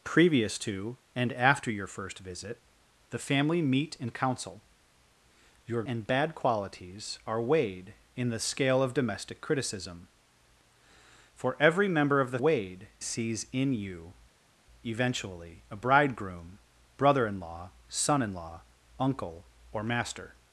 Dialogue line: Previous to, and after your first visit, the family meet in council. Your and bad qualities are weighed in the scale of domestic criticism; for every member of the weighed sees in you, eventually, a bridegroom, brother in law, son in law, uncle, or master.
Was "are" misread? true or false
false